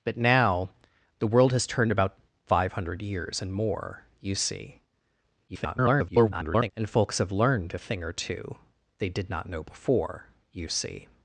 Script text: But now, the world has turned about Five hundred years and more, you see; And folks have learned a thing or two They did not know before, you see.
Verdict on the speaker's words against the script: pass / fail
fail